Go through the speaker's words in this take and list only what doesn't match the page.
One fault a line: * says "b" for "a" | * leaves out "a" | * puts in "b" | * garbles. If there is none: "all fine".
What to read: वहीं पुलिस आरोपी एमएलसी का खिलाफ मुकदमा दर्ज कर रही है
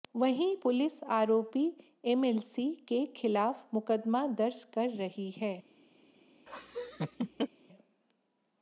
* says "के" for "का"